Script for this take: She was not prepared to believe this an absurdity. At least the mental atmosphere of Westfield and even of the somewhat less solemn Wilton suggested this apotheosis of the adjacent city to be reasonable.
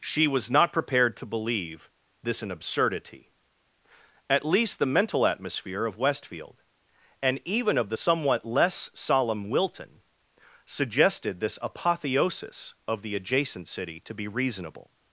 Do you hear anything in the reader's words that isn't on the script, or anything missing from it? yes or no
no